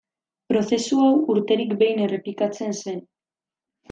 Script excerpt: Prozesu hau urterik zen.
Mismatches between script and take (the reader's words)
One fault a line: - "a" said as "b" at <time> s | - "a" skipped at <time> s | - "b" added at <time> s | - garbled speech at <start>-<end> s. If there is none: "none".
- "behin errepikatzen" added at 1.8 s